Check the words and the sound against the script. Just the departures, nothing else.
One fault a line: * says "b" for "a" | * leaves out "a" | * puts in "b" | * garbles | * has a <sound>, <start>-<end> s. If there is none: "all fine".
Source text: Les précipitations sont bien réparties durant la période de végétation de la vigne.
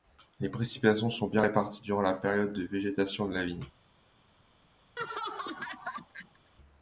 * has a laugh, 5.0-6.5 s